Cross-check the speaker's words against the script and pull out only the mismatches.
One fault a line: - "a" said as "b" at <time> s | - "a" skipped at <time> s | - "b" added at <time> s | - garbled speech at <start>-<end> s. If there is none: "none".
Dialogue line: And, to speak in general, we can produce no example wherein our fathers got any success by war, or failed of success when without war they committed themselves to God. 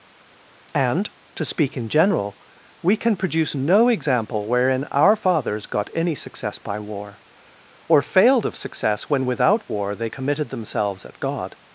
- "to" said as "at" at 11.1 s